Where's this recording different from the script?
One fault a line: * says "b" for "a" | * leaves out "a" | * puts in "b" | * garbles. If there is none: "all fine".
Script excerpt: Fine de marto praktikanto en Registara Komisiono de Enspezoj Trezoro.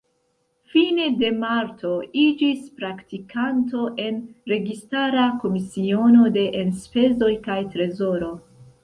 * puts in "iĝis"
* puts in "kaj"